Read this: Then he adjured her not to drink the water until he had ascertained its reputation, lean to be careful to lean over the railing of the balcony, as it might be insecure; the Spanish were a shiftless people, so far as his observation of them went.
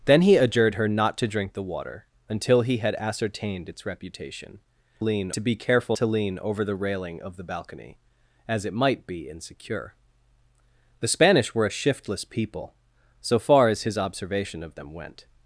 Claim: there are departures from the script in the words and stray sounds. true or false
false